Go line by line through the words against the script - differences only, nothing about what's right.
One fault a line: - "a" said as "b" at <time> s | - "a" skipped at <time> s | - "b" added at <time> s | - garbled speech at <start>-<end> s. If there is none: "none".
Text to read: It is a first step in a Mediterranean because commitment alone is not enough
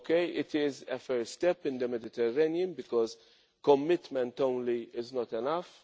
- "a" said as "the" at 1.8 s